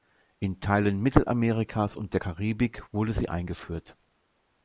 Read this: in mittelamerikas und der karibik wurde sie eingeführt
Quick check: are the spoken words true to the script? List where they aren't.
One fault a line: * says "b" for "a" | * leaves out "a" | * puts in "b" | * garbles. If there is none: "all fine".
* puts in "teilen"